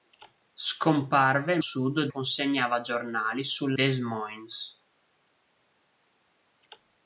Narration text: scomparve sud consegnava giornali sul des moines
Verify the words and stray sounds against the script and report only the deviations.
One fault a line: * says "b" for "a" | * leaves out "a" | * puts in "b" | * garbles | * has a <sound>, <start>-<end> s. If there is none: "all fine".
all fine